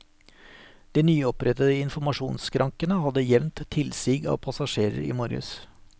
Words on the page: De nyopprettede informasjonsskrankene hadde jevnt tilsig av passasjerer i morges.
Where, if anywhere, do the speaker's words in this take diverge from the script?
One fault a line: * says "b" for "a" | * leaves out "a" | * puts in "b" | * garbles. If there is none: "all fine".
all fine